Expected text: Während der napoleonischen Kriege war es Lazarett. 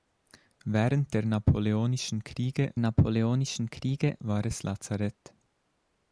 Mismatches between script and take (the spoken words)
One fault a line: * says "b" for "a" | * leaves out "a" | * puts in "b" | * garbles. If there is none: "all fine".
* puts in "napoleonischen Kriege"